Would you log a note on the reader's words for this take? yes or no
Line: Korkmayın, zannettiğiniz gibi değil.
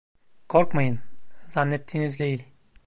yes